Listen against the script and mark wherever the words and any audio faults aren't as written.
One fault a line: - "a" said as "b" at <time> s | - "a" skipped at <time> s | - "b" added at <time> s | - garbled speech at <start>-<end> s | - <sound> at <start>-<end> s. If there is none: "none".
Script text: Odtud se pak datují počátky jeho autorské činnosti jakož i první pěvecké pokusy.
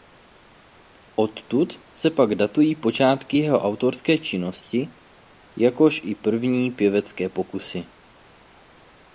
none